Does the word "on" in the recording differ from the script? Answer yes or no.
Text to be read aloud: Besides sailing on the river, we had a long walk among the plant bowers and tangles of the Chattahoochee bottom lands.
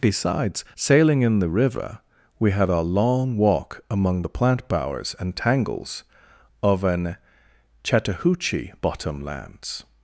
yes